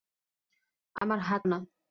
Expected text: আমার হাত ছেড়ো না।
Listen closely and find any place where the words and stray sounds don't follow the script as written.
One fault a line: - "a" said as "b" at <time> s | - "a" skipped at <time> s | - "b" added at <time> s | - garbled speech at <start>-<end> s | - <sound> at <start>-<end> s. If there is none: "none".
- dropout at 1.0-1.0 s
- "ছেড়ো" skipped at 1.4 s